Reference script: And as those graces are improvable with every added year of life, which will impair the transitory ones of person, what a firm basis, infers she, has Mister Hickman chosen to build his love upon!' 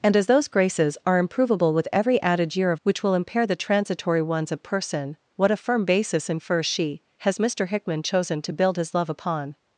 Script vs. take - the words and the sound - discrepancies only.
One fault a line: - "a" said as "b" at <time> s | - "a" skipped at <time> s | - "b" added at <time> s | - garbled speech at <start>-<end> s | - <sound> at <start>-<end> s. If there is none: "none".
- "life" skipped at 2.8 s